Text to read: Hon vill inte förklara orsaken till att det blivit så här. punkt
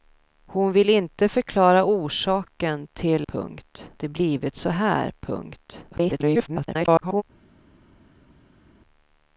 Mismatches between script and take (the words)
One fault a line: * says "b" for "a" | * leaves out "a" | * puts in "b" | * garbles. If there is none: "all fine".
* says "punkt" for "att"
* garbles